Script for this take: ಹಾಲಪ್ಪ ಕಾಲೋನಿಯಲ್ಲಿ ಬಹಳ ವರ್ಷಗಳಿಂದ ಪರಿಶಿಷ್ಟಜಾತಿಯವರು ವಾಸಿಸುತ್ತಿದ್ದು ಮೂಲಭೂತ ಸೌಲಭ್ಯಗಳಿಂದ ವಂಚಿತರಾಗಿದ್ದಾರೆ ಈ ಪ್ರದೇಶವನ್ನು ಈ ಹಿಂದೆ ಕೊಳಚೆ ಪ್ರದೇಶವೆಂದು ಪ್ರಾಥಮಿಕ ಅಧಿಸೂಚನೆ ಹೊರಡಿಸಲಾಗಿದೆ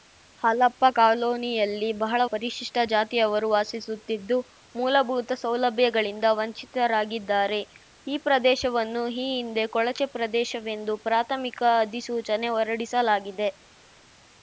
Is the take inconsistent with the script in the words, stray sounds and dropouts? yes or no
yes